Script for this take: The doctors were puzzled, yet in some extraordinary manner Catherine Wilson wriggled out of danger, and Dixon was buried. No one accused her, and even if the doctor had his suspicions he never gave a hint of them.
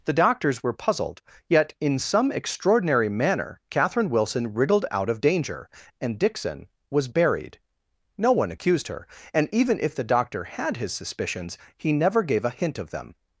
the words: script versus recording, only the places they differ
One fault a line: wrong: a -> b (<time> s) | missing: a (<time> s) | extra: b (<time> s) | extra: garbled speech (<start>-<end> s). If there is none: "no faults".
no faults